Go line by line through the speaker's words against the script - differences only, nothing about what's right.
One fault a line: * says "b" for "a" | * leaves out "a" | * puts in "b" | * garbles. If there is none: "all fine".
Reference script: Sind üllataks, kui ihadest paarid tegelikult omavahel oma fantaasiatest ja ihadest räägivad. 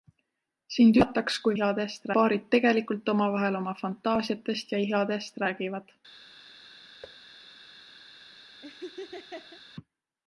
all fine